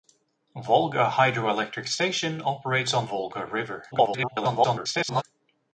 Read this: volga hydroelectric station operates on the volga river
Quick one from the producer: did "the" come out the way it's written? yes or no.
no